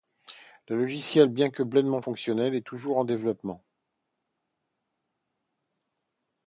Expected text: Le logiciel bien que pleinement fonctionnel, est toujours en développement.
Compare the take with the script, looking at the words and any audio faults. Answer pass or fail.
pass